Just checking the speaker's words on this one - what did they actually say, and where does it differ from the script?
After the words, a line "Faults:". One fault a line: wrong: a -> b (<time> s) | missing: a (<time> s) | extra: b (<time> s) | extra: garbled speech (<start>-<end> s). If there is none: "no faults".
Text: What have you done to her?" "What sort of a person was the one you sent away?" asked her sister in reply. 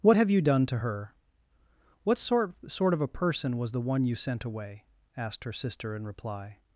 What have you done to her?" "What sort sort of a person was the one you sent away?" asked her sister in reply.
Faults:
extra: sort (2.7 s)